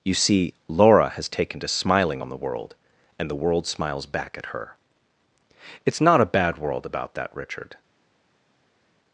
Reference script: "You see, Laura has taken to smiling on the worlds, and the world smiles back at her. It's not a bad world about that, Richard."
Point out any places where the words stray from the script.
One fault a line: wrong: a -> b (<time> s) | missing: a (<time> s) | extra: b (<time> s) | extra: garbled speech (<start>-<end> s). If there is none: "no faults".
wrong: worlds -> world (2.4 s)